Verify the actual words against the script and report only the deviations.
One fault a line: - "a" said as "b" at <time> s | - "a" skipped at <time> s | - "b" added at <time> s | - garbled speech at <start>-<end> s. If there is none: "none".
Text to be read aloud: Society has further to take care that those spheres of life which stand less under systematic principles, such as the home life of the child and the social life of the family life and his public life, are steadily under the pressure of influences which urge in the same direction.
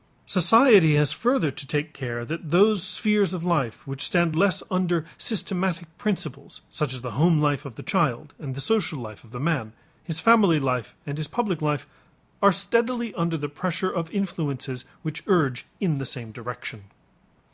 - "man his" added at 9.4 s